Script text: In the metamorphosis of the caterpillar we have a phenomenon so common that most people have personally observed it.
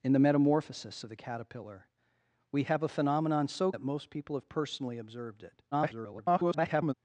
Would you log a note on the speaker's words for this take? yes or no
yes